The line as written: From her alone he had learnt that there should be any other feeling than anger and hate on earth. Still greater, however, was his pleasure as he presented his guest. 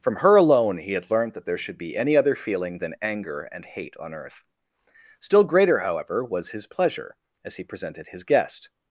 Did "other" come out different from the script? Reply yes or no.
no